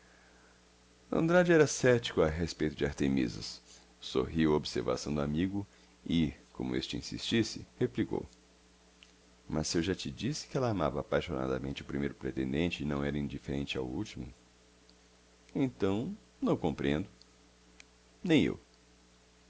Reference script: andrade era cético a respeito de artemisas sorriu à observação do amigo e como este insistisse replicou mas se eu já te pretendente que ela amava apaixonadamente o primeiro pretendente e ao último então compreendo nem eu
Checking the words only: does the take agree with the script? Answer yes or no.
no